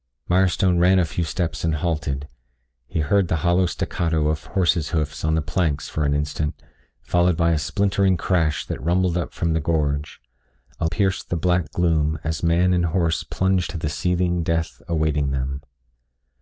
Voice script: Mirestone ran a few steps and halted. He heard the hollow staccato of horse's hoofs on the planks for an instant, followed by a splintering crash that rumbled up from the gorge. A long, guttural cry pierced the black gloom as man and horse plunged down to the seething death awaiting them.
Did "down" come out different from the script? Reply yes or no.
yes